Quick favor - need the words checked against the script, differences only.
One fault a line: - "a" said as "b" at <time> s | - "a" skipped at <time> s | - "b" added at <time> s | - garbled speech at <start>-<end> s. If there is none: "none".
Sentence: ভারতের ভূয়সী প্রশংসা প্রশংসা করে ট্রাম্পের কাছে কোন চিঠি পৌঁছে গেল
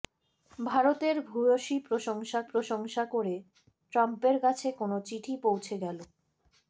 none